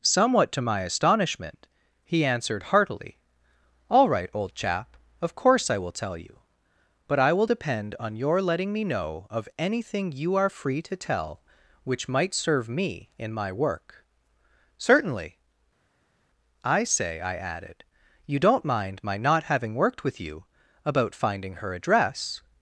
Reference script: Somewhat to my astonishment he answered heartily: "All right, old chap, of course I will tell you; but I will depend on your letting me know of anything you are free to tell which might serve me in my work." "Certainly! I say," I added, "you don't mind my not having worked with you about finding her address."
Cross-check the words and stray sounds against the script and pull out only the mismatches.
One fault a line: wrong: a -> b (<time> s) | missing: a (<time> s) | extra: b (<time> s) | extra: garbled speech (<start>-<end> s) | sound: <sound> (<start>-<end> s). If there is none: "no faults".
no faults